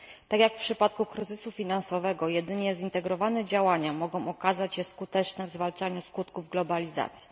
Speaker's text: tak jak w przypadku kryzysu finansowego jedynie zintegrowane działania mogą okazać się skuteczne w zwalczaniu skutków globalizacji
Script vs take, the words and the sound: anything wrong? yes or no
no